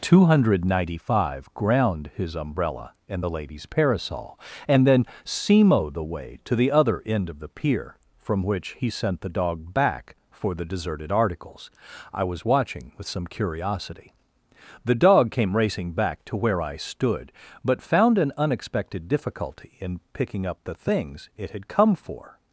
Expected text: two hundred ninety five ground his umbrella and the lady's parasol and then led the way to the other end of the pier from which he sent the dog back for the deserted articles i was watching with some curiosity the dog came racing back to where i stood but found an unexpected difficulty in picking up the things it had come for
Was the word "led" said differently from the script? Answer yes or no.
yes